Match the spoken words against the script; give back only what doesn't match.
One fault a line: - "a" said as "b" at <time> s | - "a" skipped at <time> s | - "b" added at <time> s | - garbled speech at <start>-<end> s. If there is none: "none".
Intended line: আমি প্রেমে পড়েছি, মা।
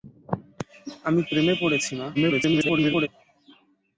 - garbled speech at 2.1-3.1 s